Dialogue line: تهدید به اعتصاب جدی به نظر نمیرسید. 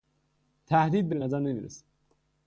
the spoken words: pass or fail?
fail